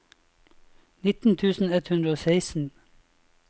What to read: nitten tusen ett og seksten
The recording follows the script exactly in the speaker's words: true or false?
false